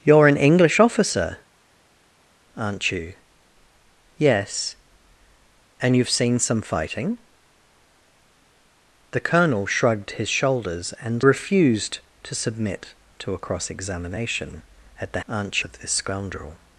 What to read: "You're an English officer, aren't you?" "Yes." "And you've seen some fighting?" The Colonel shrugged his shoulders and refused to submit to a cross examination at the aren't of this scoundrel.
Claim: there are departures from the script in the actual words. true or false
false